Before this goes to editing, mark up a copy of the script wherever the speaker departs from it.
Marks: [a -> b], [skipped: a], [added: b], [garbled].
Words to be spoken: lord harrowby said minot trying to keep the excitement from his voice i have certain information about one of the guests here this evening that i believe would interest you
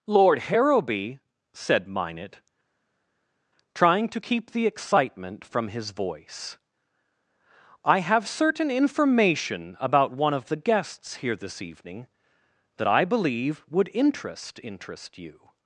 lord harrowby said minot trying to keep the excitement from his voice i have certain information about one of the guests here this evening that i believe would interest [added: interest] you